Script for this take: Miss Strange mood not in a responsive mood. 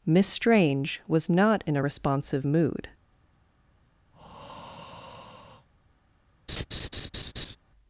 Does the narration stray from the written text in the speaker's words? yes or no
yes